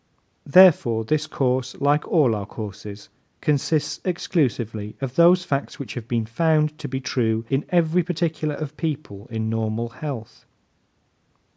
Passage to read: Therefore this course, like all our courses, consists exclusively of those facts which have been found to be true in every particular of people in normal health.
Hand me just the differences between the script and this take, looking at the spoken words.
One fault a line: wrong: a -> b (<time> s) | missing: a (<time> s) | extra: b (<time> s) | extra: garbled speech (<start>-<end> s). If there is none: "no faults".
no faults